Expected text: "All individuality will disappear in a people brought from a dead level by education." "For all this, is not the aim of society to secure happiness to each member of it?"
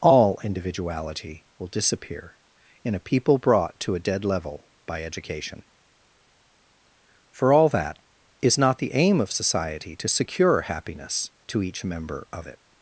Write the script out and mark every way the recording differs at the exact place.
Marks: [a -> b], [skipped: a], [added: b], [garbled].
"All individuality will disappear in a people brought [from -> to] a dead level by education." "For all [this, -> that] is not the aim of society to secure happiness to each member of it?"